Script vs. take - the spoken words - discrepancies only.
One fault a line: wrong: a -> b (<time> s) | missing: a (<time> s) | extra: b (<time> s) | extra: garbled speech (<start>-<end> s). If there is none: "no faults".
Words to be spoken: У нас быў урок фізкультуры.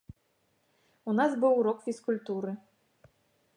no faults